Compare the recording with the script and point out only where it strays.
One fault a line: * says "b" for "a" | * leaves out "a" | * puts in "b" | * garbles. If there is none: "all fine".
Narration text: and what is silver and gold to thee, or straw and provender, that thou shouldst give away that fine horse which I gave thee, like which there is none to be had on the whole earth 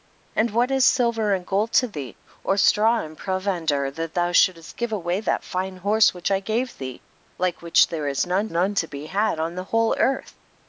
* puts in "none"